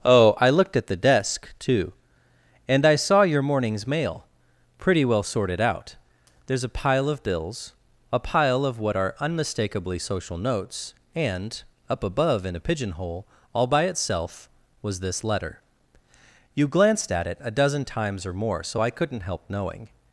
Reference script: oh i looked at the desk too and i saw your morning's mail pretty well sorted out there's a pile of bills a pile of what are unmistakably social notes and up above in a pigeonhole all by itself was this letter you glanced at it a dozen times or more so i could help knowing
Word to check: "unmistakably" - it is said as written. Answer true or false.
true